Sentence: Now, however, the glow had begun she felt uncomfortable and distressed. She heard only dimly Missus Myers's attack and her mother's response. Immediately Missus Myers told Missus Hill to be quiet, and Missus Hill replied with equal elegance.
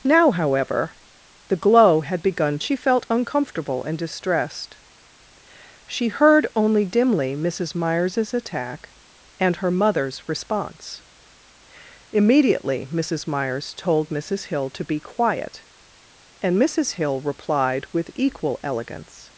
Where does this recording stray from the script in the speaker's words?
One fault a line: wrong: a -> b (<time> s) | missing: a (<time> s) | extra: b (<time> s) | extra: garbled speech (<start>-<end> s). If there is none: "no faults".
no faults